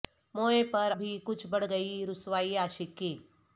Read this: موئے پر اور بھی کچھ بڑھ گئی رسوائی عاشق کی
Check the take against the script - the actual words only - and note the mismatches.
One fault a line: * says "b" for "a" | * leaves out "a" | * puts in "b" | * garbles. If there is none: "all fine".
* leaves out "اور"